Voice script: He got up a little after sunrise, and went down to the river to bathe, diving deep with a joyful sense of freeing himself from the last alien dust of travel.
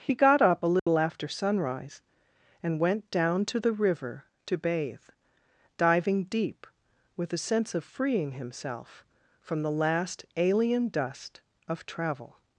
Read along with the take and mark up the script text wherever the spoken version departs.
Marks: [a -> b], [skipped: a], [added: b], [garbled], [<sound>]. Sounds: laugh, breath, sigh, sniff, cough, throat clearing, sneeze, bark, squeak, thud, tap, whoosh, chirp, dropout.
He got up a little [dropout] after sunrise, and went down to the river to bathe, diving deep with a [skipped: joyful] sense of freeing himself from the last alien dust of travel.